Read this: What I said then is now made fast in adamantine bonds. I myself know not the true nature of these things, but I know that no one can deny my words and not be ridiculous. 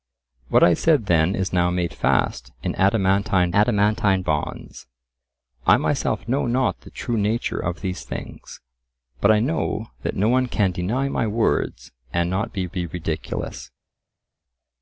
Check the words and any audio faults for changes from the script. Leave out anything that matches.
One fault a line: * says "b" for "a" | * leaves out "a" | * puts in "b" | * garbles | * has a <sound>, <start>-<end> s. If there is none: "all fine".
* puts in "adamantine"
* puts in "be"